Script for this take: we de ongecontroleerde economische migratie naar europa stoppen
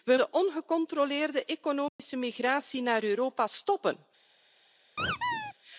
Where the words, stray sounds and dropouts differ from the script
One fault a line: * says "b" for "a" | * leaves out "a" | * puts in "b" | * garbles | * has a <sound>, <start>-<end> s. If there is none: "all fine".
* has a dropout, 1.9-2.0 s
* has a squeak, 5.0-5.5 s